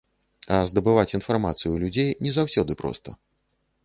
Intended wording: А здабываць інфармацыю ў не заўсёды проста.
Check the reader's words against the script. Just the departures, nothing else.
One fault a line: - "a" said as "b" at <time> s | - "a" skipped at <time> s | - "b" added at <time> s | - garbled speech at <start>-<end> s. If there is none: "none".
- "людзей" added at 1.8 s